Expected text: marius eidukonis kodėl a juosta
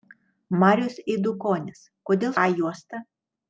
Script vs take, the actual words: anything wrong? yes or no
no